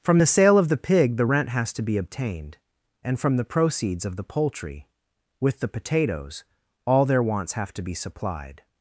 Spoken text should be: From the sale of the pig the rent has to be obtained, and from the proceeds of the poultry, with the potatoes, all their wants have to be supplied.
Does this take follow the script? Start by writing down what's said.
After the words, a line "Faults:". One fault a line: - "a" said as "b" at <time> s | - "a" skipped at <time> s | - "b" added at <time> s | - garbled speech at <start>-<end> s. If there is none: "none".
From the sale of the pig the rent has to be obtained, and from the proceeds of the poultry, with the potatoes, all their wants have to be supplied.
Faults:
none